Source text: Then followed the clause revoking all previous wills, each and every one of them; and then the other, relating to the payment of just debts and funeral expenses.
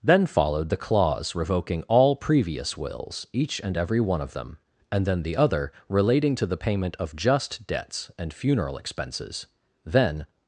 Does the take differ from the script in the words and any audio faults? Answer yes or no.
yes